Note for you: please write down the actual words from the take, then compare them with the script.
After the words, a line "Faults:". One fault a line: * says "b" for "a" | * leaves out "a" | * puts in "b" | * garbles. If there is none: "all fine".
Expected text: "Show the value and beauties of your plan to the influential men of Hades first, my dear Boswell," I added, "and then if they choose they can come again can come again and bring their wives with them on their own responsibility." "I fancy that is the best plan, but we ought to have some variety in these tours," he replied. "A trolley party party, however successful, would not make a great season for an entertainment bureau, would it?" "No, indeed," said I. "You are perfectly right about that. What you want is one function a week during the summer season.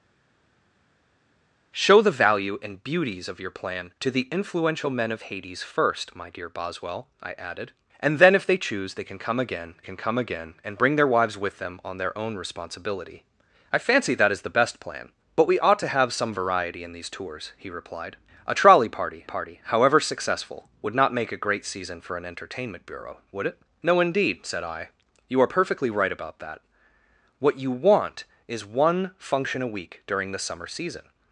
"Show the value and beauties of your plan to the influential men of Hades first, my dear Boswell," I added, "and then if they choose they can come again can come again and bring their wives with them on their own responsibility." "I fancy that is the best plan, but we ought to have some variety in these tours," he replied. "A trolley party party, however successful, would not make a great season for an entertainment bureau, would it?" "No, indeed," said I. "You are perfectly right about that. What you want is one function a week during the summer season.
Faults:
all fine